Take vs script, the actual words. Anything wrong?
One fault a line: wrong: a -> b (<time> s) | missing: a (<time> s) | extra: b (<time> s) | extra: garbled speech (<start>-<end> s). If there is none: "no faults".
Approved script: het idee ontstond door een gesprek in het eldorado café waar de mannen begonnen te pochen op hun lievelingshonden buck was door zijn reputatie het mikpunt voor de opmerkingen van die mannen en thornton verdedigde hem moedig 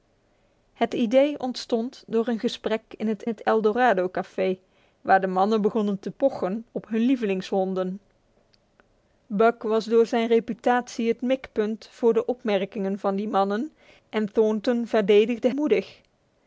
extra: het (3.3 s)
missing: hem (15.5 s)